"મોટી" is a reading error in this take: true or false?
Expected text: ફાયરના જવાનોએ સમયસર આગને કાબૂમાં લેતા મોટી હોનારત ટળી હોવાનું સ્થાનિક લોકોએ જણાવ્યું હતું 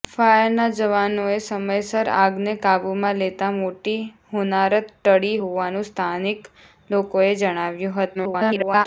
false